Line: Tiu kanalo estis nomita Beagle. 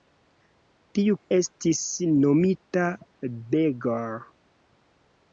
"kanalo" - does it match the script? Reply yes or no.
no